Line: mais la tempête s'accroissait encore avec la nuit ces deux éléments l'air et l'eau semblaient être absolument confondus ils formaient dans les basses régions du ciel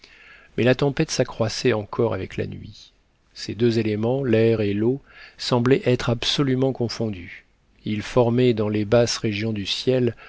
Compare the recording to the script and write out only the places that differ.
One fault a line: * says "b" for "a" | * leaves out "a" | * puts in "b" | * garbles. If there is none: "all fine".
all fine